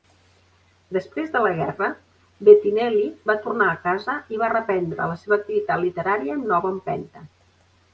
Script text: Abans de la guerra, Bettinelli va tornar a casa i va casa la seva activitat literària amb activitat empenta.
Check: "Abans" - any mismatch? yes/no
yes